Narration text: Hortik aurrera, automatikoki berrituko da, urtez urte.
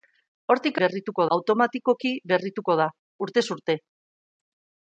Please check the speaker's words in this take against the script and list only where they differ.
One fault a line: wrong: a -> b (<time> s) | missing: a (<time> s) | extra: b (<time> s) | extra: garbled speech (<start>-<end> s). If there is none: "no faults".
wrong: aurrera -> berrituko (0.8 s)